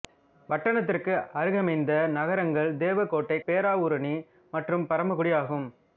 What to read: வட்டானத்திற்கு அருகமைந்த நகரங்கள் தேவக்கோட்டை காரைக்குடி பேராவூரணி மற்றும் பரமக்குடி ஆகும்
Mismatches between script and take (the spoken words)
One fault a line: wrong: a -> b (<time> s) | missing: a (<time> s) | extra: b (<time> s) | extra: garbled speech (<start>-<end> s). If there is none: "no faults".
missing: காரைக்குடி (3.4 s)